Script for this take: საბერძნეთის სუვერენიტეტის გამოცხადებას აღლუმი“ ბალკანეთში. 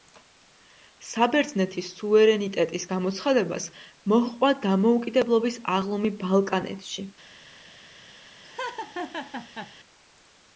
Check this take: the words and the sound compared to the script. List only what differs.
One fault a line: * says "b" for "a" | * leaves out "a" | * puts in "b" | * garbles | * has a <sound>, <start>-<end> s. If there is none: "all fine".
* puts in "მოჰყვა დამოუკიდებლობის"
* has a laugh, 8.4-9.7 s